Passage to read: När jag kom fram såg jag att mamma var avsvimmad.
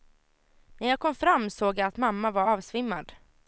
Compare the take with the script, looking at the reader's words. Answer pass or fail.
pass